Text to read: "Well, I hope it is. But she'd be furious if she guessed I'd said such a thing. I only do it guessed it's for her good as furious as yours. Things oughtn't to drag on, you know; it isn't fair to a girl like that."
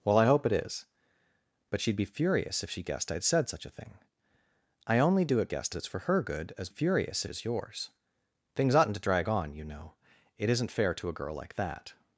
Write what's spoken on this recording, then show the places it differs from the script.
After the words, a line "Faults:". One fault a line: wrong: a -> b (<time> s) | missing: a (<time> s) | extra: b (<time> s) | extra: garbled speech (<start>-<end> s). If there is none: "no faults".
"Well, I hope it is. But she'd be furious if she guessed I'd said such a thing. I only do it guessed it's for her good as furious as yours. Things oughtn't to drag on, you know; it isn't fair to a girl like that."
Faults:
no faults